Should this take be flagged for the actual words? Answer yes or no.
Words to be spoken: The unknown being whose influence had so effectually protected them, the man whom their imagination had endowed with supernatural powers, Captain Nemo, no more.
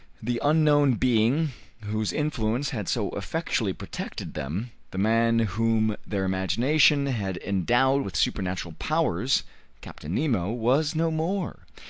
yes